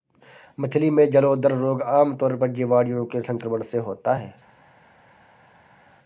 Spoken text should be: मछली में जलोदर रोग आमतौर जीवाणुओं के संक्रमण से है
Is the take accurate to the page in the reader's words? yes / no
no